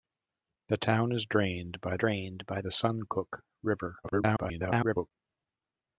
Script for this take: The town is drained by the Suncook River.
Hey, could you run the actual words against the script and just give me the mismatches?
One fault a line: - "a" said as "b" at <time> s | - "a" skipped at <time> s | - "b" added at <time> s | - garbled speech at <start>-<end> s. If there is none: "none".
- "drained by" added at 2.0 s
- garbled speech at 4.0-5.1 s